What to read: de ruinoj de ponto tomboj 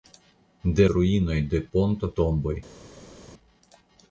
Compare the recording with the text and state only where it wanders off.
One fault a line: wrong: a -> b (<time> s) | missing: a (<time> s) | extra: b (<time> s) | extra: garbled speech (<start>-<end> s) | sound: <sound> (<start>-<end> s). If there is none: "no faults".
no faults